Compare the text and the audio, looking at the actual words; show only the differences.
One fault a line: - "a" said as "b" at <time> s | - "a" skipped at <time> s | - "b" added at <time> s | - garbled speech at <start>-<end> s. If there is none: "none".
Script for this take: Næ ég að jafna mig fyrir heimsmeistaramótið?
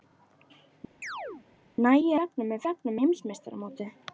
- "að" skipped at 2.2 s
- "fyrir" said as "jafna" at 2.7 s